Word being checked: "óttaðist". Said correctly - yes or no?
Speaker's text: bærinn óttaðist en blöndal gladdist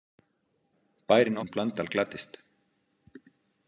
no